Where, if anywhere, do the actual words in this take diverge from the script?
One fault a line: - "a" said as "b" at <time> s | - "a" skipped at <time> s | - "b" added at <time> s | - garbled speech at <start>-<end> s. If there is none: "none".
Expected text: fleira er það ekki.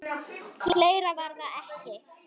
- "er" said as "var" at 1.2 s